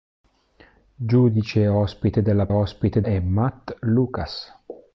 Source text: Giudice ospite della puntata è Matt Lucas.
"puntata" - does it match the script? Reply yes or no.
no